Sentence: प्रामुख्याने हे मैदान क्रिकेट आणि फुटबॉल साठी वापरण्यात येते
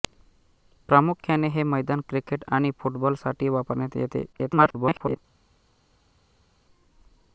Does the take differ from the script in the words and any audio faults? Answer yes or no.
yes